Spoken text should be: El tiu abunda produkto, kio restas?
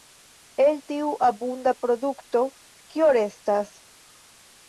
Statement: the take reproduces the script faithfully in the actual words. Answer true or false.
true